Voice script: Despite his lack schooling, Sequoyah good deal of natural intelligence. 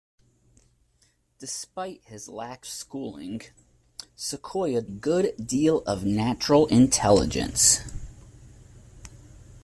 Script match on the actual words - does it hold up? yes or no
yes